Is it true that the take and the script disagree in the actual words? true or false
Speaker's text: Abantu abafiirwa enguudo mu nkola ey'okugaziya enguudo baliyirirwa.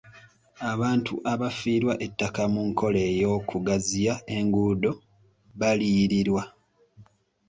true